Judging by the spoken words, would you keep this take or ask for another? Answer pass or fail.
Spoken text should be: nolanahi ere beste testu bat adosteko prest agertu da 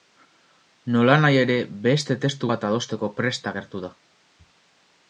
pass